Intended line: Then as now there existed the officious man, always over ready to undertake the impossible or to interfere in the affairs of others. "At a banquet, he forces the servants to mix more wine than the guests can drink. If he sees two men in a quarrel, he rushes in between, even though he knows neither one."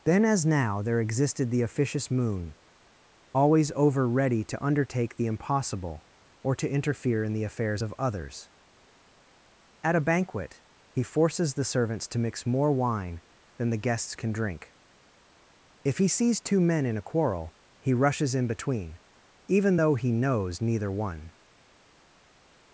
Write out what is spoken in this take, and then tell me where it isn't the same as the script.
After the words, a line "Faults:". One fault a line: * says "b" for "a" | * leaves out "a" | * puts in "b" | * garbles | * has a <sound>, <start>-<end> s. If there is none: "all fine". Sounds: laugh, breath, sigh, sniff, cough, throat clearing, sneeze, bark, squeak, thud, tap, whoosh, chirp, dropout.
Then as now there existed the officious moon, always over ready to undertake the impossible or to interfere in the affairs of others. "At a banquet, he forces the servants to mix more wine than the guests can drink. If he sees two men in a quarrel, he rushes in between, even though he knows neither one."
Faults:
* says "moon" for "man"